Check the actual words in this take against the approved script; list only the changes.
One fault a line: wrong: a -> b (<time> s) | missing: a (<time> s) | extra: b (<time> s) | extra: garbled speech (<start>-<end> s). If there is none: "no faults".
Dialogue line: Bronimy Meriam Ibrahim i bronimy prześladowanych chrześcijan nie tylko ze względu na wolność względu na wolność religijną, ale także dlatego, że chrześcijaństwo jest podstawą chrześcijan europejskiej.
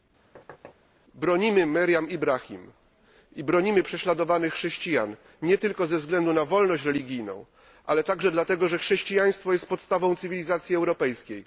missing: względu na wolność (6.8 s)
wrong: chrześcijan -> cywilizacji (10.2 s)